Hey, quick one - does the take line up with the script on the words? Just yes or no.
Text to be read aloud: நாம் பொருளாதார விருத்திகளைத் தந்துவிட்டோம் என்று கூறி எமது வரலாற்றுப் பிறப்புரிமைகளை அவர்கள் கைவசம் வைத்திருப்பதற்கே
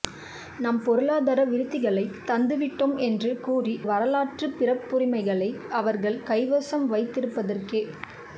no